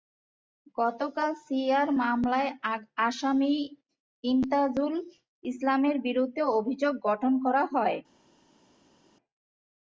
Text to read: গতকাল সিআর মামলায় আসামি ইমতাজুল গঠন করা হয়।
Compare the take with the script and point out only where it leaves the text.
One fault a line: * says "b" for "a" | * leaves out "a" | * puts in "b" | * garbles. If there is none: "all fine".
* puts in "ইসলামের বিরুদ্ধে অভিযোগ"